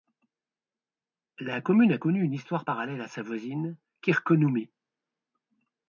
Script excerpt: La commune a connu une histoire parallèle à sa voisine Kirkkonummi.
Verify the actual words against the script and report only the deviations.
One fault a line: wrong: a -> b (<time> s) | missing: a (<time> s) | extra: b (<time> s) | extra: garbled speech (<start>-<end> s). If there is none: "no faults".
no faults